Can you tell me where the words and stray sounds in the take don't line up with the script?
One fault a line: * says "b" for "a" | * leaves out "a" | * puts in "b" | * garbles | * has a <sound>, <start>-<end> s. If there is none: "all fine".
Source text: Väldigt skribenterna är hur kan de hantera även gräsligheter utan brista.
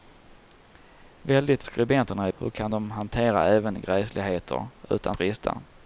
all fine